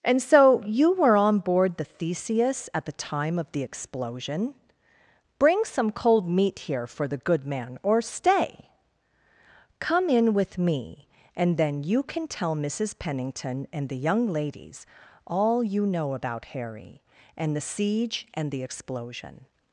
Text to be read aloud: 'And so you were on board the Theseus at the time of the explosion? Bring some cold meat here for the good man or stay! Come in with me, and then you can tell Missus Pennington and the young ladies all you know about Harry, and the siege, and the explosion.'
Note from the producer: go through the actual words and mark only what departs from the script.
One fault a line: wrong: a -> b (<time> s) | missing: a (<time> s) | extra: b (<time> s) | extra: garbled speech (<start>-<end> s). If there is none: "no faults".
no faults